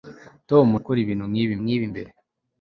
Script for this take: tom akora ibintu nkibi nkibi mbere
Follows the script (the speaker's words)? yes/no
yes